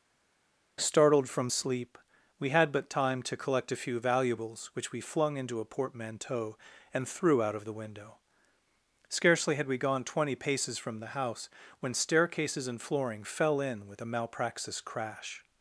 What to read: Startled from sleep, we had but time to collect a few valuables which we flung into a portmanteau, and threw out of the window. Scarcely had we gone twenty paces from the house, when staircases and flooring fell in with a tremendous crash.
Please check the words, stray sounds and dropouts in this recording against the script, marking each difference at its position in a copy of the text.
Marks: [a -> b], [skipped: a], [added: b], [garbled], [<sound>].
Startled from sleep, we had but time to collect a few valuables which we flung into a portmanteau, and threw out of the window. Scarcely had we gone twenty paces from the house, when staircases and flooring fell in with a [tremendous -> malpraxis] crash.